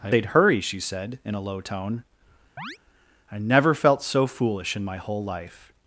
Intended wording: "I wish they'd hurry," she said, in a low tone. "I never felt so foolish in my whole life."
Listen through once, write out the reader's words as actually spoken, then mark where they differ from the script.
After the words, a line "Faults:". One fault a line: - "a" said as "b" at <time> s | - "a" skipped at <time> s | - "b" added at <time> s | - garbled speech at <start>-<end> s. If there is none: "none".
"I they'd hurry," she said, in a low tone. "I never felt so foolish in my whole life."
Faults:
- "wish" skipped at 0.1 s